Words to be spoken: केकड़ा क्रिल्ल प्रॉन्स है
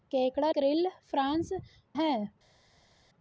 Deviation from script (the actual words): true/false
false